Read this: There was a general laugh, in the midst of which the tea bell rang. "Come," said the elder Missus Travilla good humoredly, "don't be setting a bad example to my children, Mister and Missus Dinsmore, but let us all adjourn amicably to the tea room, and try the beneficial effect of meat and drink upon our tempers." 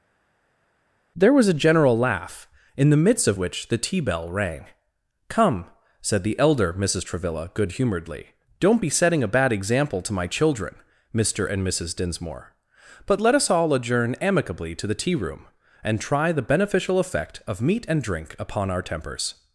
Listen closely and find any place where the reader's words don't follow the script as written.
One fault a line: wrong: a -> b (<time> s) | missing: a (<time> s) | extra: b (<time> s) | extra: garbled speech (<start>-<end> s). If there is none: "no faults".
no faults